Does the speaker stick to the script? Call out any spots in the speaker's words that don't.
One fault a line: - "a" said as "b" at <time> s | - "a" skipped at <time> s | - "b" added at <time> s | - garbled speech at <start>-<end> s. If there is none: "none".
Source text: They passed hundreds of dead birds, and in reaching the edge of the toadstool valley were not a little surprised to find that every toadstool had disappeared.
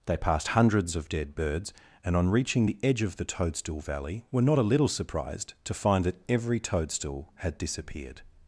- "in" said as "on" at 2.1 s